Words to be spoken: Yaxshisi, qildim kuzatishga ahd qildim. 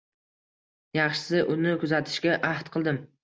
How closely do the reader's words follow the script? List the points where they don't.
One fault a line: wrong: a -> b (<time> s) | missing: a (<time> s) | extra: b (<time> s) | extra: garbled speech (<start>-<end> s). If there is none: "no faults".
wrong: qildim -> uni (1.6 s)